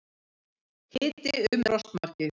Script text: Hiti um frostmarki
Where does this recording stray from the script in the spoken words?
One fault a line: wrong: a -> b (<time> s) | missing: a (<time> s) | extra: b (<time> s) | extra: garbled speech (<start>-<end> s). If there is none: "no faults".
no faults